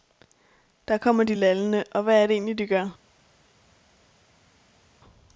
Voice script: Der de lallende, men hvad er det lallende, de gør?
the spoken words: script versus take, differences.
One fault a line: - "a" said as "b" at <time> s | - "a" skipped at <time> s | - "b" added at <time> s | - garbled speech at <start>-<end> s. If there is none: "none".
- "kommer" added at 1.0 s
- "men" said as "og" at 1.9 s
- "lallende" said as "egentlig" at 2.3 s